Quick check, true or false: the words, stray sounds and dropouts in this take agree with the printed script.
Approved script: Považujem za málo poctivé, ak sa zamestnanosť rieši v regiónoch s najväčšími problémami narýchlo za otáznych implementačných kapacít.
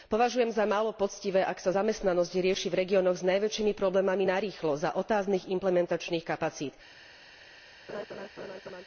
false